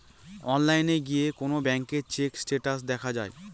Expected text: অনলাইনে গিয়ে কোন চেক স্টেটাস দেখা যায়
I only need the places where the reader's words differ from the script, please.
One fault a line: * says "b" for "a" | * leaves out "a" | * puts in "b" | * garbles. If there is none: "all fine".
* puts in "ব্যাঙ্কের"